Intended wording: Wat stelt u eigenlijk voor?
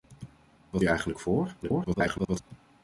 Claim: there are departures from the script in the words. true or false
true